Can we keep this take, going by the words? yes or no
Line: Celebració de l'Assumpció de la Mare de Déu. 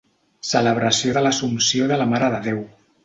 yes